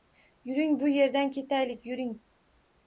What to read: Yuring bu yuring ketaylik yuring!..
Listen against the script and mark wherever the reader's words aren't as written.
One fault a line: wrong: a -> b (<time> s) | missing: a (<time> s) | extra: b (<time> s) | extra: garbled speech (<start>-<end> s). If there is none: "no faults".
wrong: yuring -> yerdan (0.9 s)